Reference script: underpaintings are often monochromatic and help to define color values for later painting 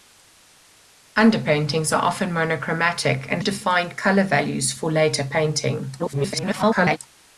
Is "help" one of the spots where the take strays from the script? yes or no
yes